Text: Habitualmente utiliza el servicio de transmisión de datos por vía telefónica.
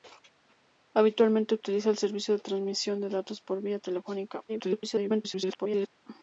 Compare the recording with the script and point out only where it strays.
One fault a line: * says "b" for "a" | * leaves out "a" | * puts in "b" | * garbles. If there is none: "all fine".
* garbles